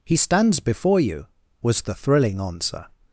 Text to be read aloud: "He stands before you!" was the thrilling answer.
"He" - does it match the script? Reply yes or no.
yes